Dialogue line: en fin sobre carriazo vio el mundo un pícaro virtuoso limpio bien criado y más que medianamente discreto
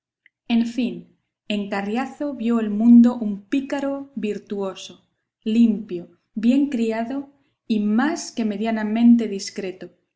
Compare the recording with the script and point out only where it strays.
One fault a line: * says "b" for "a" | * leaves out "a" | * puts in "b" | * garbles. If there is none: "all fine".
* says "en" for "sobre"